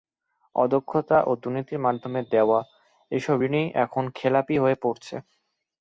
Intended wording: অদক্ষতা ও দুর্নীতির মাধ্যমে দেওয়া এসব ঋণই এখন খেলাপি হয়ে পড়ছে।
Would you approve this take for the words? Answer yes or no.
yes